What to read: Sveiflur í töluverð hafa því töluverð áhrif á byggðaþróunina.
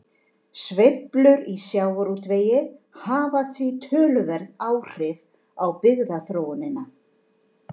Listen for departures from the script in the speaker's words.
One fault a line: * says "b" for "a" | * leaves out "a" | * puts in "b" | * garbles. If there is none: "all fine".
* says "sjávarútvegi" for "töluverð"